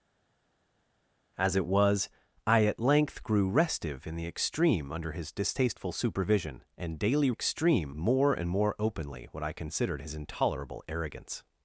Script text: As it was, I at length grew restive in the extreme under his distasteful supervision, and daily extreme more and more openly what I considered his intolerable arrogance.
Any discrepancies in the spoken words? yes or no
no